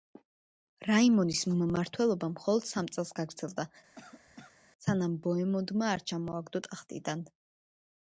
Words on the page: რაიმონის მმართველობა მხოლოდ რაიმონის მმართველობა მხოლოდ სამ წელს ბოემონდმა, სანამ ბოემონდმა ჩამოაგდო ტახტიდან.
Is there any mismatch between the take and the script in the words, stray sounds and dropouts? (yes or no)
yes